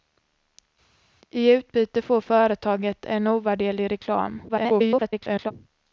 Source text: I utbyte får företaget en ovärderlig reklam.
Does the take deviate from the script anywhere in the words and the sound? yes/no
yes